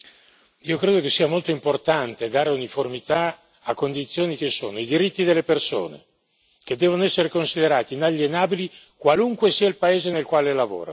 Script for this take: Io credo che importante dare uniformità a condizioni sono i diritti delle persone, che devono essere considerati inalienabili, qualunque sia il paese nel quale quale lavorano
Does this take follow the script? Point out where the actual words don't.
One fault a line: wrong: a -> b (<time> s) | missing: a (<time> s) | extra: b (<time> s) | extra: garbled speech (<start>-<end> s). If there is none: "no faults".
extra: sia molto (1.1 s)
extra: che (4.3 s)
missing: quale (10.5 s)